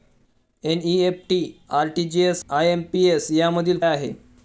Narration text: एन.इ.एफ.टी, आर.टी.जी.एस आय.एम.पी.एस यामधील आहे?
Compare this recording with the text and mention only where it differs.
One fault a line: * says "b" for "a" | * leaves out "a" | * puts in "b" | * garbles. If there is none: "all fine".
all fine